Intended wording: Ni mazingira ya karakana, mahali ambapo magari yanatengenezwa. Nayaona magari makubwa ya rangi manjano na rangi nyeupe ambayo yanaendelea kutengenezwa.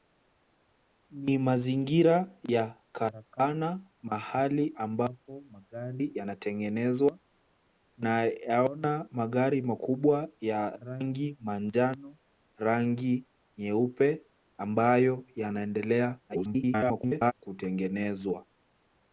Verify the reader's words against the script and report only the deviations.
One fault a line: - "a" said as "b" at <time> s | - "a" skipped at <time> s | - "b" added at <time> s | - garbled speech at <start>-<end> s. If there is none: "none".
- "na" skipped at 12.2 s
- garbled speech at 16.3-17.3 s